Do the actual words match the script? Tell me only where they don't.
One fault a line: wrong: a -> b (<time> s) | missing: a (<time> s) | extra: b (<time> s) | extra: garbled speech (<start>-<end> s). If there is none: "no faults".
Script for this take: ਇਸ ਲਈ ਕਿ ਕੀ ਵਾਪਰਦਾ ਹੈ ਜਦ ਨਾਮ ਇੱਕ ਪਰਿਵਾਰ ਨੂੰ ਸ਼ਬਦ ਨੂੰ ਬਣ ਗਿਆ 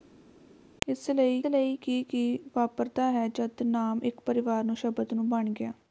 extra: ਲਈ (1.5 s)